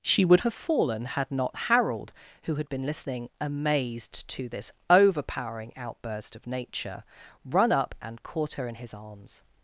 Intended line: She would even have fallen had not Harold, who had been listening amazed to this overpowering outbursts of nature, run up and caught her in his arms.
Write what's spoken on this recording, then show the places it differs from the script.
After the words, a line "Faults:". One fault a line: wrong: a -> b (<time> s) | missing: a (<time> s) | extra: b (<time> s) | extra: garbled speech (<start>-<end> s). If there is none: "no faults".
She would have fallen had not Harold, who had been listening amazed to this overpowering outburst of nature, run up and caught her in his arms.
Faults:
missing: even (0.4 s)
wrong: outbursts -> outburst (5.8 s)